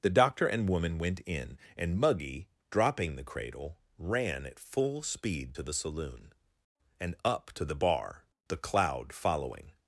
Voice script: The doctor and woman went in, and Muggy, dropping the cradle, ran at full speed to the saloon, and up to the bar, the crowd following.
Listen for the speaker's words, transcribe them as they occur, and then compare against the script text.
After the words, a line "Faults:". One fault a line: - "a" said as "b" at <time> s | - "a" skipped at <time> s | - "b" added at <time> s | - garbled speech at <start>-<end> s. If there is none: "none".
The doctor and woman went in, and Muggy, dropping the cradle, ran at full speed to the saloon, and up to the bar, the cloud following.
Faults:
- "crowd" said as "cloud" at 8.6 s